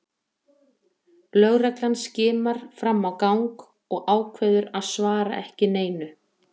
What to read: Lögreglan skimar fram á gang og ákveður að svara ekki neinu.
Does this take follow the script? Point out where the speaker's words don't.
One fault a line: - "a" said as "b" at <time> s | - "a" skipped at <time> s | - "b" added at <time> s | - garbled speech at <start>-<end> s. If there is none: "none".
none